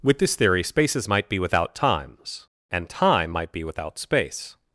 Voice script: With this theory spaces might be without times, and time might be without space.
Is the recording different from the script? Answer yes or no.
no